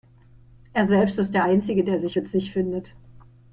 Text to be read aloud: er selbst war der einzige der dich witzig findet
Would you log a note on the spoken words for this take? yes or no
yes